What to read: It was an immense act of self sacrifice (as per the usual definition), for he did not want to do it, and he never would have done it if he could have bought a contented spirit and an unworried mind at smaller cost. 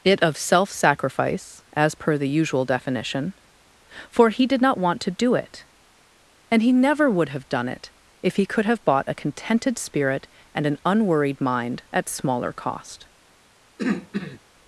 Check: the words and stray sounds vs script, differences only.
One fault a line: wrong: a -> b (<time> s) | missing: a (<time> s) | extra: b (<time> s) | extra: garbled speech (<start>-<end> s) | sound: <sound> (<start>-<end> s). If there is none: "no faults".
missing: was an immense act (0.2 s)
sound: throat clearing (13.8-14.4 s)